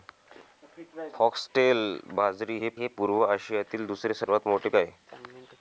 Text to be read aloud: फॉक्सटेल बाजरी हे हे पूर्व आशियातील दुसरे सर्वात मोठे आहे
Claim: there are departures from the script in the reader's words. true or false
false